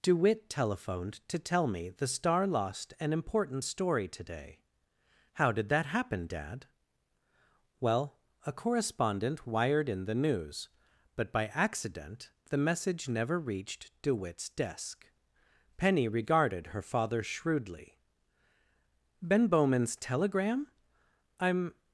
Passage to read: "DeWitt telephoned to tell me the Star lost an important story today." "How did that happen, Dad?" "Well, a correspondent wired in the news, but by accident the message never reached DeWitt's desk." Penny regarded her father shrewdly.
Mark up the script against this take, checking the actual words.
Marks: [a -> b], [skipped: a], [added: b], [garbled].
"DeWitt telephoned to tell me the Star lost an important story today." "How did that happen, Dad?" "Well, a correspondent wired in the news, but by accident the message never reached DeWitt's desk." Penny regarded her father shrewdly. [added: Ben Bowman's telegram I'm]